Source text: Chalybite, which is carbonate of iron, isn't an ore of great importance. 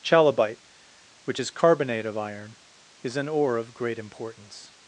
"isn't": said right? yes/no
no